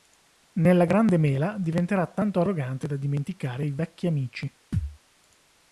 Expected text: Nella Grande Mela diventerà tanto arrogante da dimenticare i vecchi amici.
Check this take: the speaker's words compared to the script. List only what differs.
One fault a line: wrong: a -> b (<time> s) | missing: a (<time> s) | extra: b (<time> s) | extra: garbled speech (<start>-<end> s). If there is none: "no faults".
no faults